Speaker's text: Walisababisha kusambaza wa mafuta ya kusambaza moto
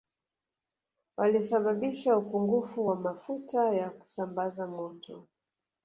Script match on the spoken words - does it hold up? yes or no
no